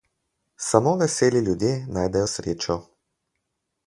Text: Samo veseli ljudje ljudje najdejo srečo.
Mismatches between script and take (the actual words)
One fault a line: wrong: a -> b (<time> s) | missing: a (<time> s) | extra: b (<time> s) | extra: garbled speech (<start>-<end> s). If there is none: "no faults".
missing: ljudje (1.9 s)